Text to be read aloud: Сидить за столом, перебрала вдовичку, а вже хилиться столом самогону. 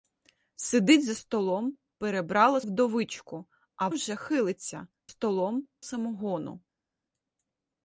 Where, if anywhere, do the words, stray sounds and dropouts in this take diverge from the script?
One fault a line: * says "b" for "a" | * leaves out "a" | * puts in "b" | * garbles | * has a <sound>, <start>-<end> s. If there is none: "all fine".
all fine